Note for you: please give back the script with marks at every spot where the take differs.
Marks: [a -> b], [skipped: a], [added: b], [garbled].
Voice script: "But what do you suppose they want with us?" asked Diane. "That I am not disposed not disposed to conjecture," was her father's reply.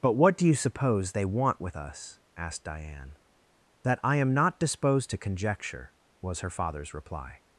"But what do you suppose they want with us?" asked Diane. "That I am not disposed [skipped: not disposed] to conjecture," was her father's reply.